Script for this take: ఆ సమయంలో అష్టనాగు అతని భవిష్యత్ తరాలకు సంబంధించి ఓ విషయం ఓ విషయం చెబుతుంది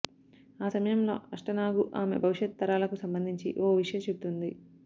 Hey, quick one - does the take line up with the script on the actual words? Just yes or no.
no